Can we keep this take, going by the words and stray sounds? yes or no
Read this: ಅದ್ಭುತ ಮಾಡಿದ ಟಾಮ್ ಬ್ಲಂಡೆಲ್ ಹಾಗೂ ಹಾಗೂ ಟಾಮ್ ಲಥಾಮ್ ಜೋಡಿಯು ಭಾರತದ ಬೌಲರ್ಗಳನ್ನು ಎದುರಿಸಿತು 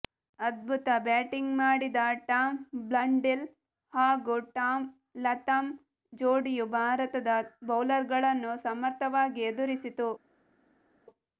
no